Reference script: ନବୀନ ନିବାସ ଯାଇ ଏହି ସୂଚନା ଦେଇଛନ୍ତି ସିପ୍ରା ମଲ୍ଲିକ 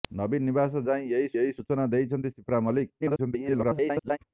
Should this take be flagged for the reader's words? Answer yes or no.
yes